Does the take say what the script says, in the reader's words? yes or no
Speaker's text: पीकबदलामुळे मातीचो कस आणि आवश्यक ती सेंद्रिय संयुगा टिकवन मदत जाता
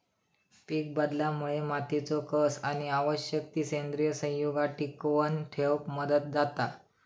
no